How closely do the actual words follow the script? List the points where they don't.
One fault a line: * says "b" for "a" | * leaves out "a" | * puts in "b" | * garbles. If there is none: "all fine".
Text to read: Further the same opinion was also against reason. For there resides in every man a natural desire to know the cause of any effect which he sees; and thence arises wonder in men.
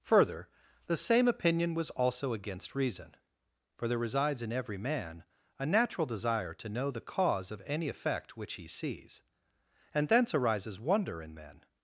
all fine